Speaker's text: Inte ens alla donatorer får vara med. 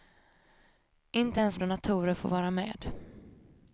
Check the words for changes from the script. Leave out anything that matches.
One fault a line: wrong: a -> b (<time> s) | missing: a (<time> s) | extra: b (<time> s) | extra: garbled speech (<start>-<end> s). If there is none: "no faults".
missing: alla (1.6 s)